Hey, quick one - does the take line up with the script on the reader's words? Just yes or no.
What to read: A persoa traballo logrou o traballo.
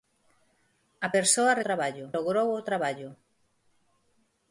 yes